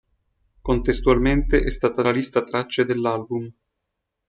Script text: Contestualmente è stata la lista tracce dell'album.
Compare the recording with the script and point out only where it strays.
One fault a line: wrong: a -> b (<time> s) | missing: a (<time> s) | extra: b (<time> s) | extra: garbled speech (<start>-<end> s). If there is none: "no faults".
no faults